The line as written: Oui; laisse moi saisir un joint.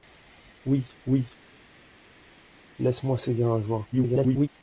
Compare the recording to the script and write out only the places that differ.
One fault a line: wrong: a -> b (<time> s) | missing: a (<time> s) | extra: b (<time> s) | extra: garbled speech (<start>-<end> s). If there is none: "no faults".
extra: oui (1.1 s)
extra: garbled speech (3.9-4.5 s)